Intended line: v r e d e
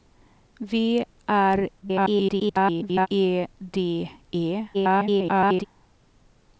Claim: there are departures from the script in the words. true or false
true